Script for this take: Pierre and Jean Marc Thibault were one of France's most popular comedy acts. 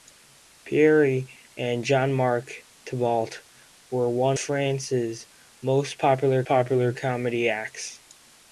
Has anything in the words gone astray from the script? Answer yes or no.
yes